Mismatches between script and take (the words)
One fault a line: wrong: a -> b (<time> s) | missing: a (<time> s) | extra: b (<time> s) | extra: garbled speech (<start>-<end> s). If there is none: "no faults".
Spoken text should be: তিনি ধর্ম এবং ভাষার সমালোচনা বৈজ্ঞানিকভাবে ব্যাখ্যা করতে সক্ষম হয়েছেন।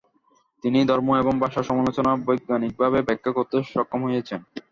no faults